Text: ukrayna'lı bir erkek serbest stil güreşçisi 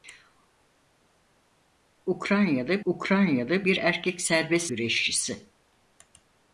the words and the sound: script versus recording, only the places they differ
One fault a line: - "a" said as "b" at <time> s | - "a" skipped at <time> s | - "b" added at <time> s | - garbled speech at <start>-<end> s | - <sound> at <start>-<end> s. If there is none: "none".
- "ukrayna'lı" added at 2.8 s
- "stil" skipped at 4.7 s